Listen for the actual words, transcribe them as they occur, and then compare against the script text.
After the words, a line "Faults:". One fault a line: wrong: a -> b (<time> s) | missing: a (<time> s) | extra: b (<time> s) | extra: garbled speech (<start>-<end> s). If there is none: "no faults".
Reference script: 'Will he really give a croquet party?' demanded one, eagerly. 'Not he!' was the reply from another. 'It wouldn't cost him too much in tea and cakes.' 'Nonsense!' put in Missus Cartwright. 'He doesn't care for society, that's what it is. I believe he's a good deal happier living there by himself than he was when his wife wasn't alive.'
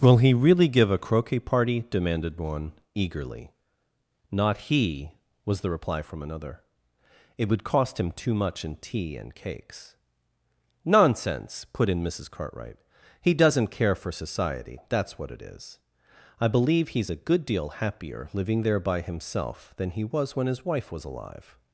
'Will he really give a croquet party?' demanded one, eagerly. 'Not he!' was the reply from another. 'It would cost him too much in tea and cakes.' 'Nonsense!' put in Missus Cartwright. 'He doesn't care for society, that's what it is. I believe he's a good deal happier living there by himself than he was when his wife was alive.'
Faults:
wrong: wouldn't -> would (7.5 s)
wrong: wasn't -> was (20.9 s)